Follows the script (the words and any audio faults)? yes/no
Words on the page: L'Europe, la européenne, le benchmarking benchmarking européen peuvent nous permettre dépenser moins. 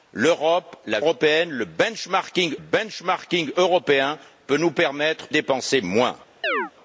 no